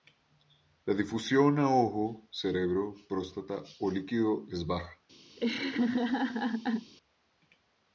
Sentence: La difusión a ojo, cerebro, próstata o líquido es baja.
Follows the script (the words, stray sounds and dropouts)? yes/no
no